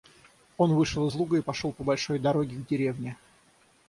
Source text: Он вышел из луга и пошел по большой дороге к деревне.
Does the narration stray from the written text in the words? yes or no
no